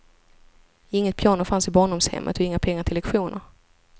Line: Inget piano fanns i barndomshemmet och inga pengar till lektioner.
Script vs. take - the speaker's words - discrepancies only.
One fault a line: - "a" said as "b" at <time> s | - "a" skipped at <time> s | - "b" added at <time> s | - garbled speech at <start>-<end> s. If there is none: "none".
none